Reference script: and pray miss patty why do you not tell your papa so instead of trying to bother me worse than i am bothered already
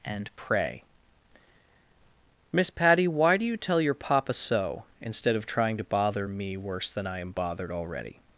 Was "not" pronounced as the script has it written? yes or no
no